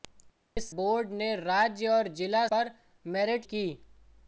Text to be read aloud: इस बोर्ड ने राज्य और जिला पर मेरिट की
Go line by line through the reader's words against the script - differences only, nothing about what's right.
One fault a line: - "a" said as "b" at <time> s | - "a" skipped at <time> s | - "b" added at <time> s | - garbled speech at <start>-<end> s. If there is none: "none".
none